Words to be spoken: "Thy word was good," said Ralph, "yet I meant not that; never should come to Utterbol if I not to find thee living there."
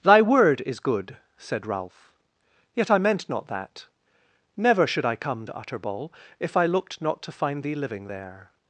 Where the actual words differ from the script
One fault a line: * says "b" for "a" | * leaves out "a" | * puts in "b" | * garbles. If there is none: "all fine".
* says "is" for "was"
* puts in "I"
* puts in "looked"